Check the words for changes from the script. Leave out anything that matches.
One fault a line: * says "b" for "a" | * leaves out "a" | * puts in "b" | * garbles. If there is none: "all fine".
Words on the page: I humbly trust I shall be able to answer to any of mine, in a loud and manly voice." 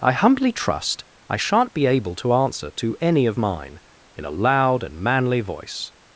* says "shan't" for "shall"